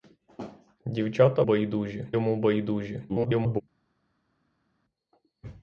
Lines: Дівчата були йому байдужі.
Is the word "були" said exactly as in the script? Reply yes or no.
no